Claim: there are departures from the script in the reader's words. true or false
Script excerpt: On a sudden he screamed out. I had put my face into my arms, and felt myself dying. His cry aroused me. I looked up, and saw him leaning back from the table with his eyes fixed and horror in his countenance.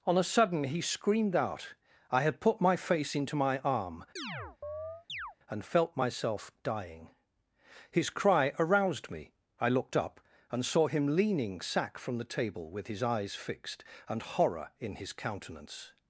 true